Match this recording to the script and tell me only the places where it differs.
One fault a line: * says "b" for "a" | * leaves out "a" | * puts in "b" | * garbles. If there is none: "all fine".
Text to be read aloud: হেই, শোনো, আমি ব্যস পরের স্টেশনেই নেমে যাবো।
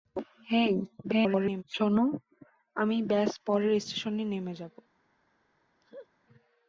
* garbles